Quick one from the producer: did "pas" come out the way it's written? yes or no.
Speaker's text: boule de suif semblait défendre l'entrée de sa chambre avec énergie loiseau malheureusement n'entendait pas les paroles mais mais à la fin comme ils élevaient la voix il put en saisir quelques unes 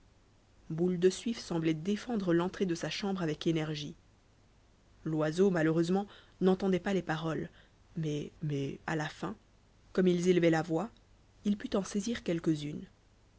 yes